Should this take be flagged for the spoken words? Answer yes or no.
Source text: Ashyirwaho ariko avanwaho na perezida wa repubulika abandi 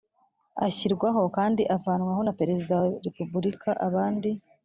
yes